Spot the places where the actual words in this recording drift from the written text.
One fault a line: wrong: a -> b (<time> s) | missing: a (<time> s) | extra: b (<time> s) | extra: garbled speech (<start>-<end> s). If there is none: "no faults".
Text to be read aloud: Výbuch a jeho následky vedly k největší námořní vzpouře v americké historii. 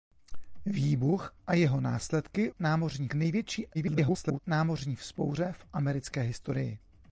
wrong: vedly -> námořní (2.6 s)
extra: garbled speech (3.7-4.4 s)